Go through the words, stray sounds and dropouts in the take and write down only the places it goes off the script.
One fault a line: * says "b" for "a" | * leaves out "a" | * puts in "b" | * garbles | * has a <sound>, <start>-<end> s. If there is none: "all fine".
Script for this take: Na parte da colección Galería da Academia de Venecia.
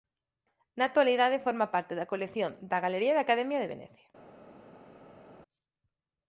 * puts in "actualidade forma"
* puts in "da"